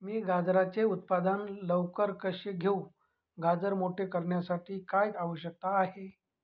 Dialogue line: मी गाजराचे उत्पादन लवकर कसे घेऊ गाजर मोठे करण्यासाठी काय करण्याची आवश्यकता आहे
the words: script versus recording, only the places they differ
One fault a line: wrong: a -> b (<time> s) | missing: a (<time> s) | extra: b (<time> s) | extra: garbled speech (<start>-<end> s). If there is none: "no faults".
missing: करण्याची (5.1 s)